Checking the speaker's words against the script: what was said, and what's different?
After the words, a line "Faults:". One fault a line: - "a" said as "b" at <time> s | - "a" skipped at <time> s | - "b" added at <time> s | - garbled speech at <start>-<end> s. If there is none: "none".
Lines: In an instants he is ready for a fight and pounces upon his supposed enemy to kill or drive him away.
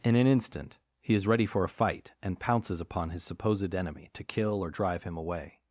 In an instant he is ready for a fight and pounces upon his supposed enemy to kill or drive him away.
Faults:
- "instants" said as "instant" at 0.2 s